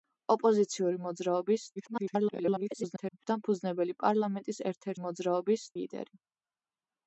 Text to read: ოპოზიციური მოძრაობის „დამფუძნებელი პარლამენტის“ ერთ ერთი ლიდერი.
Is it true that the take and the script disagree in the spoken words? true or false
true